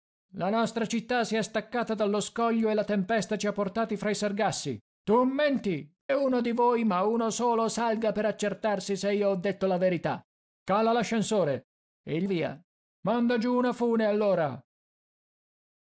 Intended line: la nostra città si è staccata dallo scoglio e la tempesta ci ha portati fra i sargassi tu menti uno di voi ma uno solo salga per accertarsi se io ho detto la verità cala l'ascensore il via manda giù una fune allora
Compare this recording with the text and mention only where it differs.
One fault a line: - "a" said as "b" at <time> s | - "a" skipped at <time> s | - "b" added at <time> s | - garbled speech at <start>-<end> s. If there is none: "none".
none